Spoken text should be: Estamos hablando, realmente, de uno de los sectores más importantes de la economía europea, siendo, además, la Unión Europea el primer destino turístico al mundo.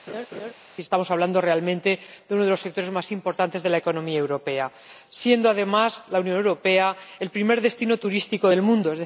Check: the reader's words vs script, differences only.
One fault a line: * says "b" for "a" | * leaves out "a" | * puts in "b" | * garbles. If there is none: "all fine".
* says "del" for "al"